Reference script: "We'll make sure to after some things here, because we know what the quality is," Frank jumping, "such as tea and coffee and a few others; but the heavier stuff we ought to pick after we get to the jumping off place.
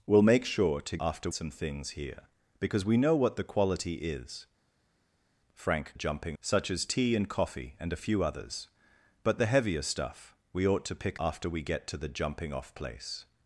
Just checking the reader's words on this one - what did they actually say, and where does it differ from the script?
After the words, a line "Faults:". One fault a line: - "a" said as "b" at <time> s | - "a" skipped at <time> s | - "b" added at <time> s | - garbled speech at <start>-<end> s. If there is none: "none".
"We'll make sure to after some things here, because we know what the quality is," Frank jumping, "such as tea and coffee and a few others; but the heavier stuff we ought to pick after we get to the jumping off place.
Faults:
none